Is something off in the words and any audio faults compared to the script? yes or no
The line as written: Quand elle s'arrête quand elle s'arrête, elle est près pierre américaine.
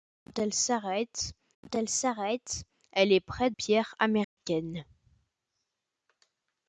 yes